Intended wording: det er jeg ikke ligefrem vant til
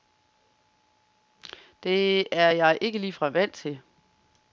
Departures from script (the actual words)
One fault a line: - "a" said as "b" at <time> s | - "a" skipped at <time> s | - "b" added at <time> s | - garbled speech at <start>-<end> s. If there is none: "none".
none